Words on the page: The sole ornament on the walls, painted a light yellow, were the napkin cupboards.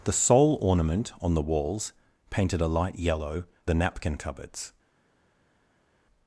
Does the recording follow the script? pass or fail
fail